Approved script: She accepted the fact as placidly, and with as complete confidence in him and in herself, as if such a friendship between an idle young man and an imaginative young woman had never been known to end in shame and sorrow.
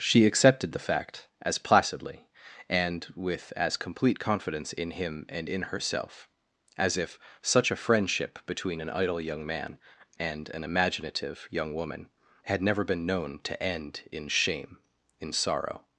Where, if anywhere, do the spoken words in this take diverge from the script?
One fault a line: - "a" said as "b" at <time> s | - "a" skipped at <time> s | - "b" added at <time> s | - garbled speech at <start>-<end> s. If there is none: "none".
- "and" said as "in" at 15.2 s